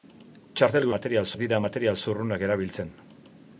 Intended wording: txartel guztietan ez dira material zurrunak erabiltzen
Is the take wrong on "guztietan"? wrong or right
wrong